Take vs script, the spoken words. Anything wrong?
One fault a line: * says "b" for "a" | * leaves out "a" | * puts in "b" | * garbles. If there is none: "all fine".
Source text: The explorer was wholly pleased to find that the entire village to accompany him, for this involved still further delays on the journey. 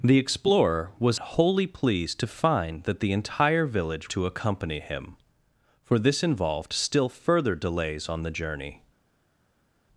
all fine